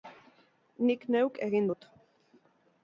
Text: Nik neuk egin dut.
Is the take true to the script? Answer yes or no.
yes